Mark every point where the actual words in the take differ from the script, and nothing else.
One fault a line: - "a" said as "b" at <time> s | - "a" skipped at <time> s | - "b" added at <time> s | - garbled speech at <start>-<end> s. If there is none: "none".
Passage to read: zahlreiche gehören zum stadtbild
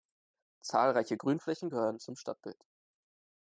- "grünflächen" added at 1.1 s